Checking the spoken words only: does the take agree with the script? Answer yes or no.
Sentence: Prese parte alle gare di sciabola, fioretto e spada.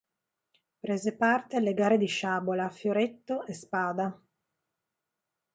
yes